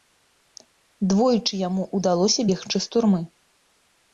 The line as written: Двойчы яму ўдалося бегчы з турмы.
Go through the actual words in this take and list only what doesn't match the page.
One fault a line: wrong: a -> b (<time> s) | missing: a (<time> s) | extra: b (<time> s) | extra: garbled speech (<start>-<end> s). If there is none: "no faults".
no faults